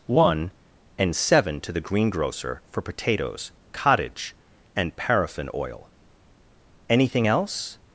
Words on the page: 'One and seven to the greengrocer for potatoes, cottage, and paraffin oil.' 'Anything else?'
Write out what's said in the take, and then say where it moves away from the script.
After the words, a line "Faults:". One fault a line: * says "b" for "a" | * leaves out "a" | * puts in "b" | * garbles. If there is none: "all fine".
'One and seven to the greengrocer for potatoes, cottage, and paraffin oil.' 'Anything else?'
Faults:
all fine